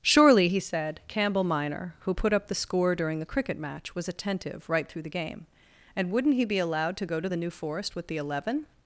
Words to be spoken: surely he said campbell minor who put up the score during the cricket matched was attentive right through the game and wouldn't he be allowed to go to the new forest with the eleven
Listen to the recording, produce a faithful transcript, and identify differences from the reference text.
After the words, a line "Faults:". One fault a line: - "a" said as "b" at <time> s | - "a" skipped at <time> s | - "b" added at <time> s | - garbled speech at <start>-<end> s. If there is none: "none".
surely he said campbell minor who put up the score during the cricket match was attentive right through the game and wouldn't he be allowed to go to the new forest with the eleven
Faults:
- "matched" said as "match" at 3.6 s